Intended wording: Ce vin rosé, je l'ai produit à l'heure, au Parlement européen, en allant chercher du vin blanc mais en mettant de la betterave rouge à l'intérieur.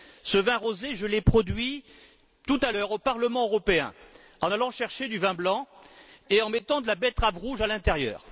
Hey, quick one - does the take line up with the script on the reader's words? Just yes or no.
no